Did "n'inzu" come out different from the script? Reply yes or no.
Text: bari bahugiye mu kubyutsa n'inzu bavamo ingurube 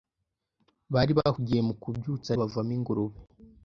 yes